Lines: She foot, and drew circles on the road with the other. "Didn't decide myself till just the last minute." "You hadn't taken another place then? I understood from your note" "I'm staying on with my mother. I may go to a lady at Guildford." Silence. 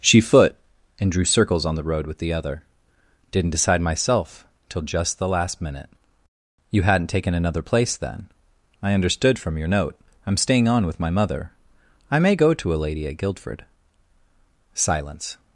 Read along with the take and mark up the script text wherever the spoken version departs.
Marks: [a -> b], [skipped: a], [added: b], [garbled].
She foot, and drew circles on the road with the other. "Didn't decide myself till just the last minute." "You hadn't taken another place then? I understood from your note" "I'm staying on with my mother. I may go to a lady at Guildford." Silence.